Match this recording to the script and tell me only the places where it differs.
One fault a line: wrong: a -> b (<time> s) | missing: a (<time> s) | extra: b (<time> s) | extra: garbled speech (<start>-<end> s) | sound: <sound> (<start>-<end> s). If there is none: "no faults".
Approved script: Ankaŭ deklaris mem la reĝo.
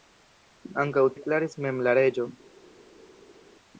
no faults